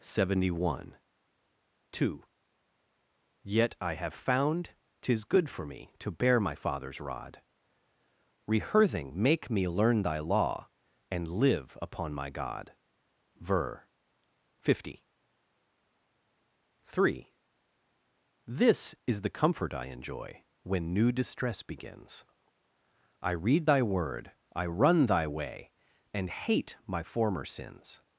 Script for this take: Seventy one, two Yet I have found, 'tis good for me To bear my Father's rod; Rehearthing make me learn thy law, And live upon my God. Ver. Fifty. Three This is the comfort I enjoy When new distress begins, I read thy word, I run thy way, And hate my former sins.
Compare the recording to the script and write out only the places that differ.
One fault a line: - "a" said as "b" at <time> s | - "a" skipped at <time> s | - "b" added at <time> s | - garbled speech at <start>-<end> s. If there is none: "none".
none